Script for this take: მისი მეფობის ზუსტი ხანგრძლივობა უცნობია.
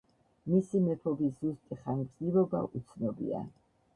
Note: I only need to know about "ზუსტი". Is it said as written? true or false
true